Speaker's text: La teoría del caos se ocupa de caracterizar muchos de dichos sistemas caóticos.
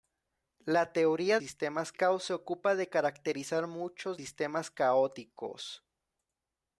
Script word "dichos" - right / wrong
wrong